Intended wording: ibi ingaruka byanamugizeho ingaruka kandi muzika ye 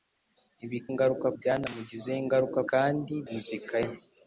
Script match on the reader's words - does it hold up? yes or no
yes